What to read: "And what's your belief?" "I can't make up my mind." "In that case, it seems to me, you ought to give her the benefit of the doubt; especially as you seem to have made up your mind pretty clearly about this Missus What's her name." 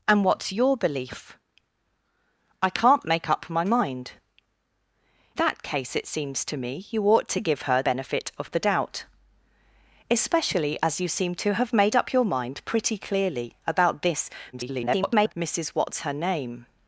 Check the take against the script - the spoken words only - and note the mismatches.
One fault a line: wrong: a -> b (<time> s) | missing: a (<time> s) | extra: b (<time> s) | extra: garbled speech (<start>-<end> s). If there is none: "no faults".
missing: In (4.1 s)
missing: the (7.8 s)
extra: garbled speech (14.5-15.3 s)